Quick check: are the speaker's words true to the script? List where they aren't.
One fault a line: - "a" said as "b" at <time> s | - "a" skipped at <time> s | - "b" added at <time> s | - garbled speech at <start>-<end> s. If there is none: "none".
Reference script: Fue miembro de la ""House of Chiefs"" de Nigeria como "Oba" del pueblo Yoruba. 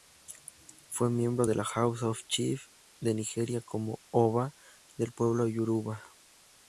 none